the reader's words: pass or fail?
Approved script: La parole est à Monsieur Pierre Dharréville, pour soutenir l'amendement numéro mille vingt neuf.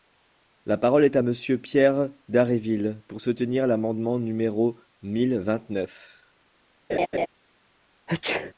pass